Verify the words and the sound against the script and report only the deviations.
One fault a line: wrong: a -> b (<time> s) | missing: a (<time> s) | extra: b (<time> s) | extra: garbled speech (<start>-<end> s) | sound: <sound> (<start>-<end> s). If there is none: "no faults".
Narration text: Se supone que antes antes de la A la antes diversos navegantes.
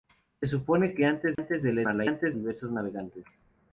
sound: dropout (1.4-1.4 s)